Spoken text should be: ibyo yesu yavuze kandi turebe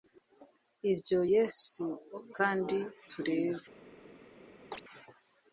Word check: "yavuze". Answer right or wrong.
wrong